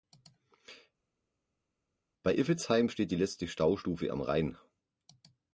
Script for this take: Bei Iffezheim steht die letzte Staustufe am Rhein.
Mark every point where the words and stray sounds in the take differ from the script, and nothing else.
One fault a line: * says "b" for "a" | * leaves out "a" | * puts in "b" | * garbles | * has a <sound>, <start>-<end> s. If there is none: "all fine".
all fine